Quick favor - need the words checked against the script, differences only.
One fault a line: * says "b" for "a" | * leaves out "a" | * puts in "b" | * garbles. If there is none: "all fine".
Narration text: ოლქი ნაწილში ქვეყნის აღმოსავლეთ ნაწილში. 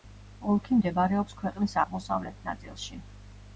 * says "მდებარეობს" for "ნაწილში"